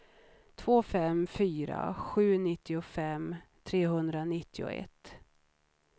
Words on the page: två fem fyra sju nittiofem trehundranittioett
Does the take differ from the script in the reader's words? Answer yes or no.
no